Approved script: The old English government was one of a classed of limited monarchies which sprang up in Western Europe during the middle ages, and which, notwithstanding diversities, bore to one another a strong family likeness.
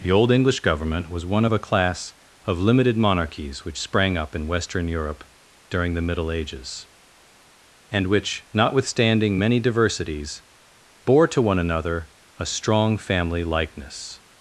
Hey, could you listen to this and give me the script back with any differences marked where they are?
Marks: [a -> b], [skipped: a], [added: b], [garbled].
The old English government was one of a [classed -> class] of limited monarchies which sprang up in Western Europe during the middle ages, and which, notwithstanding [added: many] diversities, bore to one another a strong family likeness.